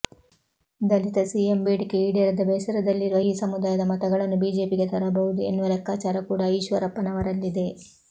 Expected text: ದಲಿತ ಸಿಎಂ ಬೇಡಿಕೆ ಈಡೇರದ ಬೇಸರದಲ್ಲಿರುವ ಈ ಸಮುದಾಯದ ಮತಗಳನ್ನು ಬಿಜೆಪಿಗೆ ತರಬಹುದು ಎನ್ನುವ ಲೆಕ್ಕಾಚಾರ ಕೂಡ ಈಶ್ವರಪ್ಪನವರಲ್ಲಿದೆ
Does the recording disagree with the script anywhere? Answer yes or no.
no